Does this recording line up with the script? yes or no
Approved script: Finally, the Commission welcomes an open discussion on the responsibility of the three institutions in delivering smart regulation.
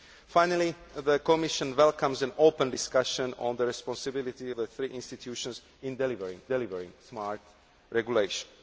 no